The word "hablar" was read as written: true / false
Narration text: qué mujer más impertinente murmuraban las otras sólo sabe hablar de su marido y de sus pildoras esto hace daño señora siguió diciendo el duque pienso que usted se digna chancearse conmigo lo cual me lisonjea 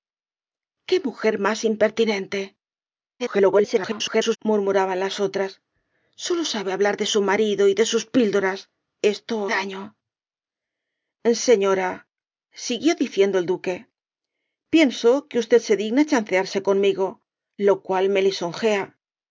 true